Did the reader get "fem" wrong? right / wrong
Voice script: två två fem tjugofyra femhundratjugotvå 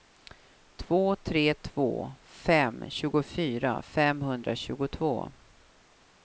right